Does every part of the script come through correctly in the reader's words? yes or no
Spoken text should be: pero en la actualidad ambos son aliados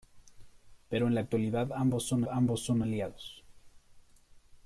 no